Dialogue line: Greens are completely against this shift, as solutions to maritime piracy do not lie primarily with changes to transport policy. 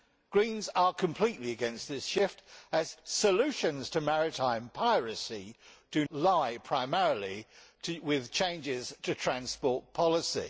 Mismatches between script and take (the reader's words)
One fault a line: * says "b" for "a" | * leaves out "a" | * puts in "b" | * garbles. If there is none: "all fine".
* leaves out "not"